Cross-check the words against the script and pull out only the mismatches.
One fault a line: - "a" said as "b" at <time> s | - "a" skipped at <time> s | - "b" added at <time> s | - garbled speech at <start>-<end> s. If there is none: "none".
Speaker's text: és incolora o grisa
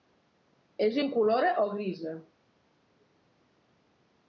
none